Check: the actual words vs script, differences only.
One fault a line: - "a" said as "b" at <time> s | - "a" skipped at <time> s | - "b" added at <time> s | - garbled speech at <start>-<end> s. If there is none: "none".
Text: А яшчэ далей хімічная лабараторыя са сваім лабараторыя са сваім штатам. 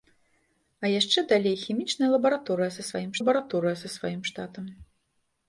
none